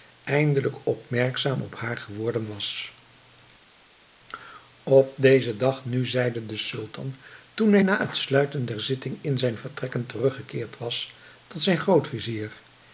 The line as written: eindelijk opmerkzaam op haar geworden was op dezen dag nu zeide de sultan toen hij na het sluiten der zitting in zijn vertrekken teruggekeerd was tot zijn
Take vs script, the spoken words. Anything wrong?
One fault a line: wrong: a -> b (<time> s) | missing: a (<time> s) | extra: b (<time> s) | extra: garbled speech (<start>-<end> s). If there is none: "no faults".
no faults